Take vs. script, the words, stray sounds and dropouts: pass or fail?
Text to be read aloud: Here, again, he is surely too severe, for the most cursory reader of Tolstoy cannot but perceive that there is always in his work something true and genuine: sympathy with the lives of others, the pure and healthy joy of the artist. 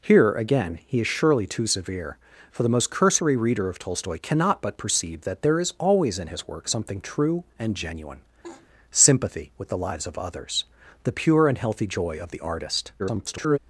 fail